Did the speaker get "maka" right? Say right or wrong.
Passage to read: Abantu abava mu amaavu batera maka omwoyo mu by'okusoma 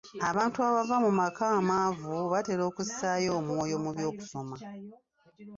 wrong